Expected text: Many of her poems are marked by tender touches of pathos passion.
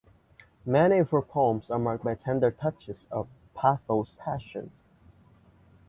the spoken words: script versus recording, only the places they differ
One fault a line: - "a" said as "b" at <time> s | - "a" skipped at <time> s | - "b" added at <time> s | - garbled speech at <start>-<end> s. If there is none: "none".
none